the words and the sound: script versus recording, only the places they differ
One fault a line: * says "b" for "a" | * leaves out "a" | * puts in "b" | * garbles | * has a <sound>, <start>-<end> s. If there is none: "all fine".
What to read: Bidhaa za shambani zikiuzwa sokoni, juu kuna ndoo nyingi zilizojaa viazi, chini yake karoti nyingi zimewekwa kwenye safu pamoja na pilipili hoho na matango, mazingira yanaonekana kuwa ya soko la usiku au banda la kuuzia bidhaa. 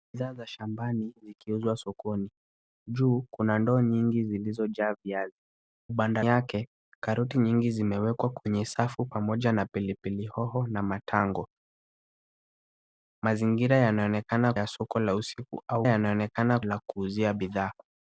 * says "banda" for "chini"
* leaves out "kuwa"
* says "yanaonekana" for "banda"